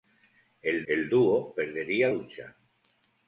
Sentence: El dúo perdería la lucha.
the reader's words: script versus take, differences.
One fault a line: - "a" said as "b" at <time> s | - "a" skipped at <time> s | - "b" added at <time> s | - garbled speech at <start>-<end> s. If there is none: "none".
- "el" added at 0.9 s
- "la" skipped at 2.1 s